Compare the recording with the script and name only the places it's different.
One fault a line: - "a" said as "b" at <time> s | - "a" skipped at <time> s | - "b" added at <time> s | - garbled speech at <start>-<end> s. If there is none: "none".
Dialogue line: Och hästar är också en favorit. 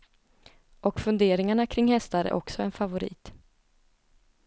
- "funderingarna kring" added at 1.0 s